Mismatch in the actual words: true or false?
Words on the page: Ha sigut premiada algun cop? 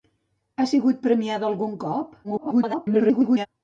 true